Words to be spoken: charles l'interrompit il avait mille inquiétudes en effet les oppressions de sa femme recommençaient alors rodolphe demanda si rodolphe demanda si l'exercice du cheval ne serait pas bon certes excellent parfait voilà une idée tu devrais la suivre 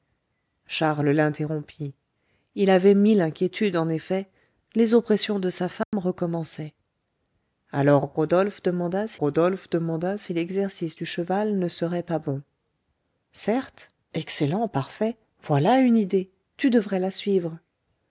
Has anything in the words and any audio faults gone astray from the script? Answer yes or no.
yes